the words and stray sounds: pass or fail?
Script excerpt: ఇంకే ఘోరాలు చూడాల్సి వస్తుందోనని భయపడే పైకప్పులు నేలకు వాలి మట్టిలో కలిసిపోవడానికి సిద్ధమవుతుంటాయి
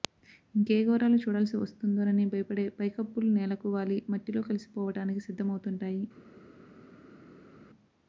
pass